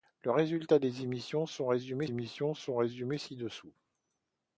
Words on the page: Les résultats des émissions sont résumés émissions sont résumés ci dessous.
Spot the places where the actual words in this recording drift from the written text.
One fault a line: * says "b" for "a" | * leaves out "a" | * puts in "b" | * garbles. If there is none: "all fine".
all fine